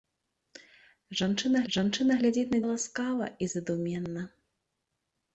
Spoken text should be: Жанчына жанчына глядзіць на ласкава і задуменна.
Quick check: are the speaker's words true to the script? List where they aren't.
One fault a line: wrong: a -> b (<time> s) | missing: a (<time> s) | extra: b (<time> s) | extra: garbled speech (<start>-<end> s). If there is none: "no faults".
no faults